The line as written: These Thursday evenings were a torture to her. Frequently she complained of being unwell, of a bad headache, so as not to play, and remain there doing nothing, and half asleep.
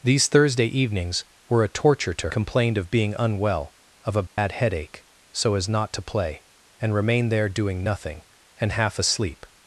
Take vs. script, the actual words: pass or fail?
fail